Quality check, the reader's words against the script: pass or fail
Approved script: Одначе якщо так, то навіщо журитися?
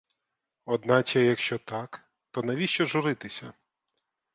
pass